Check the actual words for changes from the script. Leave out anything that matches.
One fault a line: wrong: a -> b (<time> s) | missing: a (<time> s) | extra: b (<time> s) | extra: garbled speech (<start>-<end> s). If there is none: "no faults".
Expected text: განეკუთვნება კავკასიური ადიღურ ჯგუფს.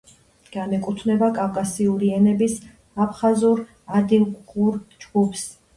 extra: ენების აფხაზურ (2.2 s)